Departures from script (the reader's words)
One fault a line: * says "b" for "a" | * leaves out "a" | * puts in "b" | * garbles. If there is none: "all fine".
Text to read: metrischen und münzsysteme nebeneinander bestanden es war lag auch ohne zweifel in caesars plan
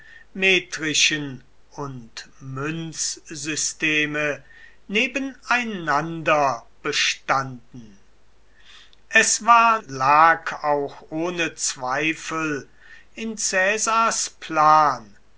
all fine